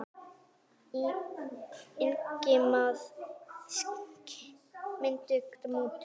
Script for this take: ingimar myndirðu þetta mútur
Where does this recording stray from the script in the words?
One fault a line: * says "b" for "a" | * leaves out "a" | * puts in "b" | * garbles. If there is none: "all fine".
all fine